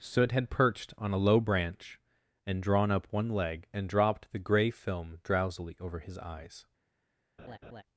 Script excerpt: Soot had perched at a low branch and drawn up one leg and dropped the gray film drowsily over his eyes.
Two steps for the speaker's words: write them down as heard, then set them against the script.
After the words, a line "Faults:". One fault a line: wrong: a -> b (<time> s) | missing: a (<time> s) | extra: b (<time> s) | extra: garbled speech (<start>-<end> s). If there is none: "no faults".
Soot had perched on a low branch and drawn up one leg and dropped the gray film drowsily over his eyes.
Faults:
wrong: at -> on (1.0 s)